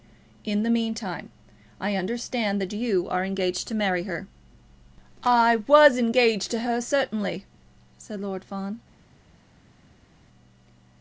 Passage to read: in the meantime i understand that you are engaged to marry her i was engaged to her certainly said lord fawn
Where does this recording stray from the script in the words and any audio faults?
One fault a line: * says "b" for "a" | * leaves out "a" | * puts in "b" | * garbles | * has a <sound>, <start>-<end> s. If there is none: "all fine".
all fine